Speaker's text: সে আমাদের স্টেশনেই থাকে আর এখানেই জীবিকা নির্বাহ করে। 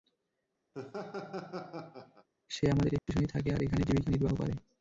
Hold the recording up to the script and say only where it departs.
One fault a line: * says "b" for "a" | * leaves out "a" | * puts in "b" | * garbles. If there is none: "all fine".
all fine